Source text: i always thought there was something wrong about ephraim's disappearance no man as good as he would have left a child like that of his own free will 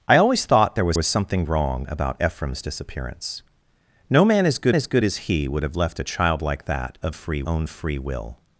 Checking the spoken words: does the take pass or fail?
fail